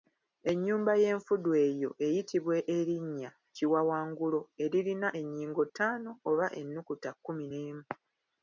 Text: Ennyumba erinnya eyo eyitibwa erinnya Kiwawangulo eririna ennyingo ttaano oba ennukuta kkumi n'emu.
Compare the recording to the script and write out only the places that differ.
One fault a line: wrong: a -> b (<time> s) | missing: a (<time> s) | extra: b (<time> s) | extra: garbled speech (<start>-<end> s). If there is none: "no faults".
wrong: erinnya -> y'enfudu (1.0 s)